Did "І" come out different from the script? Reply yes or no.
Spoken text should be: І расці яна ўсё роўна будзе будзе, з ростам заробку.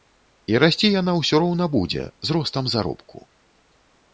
no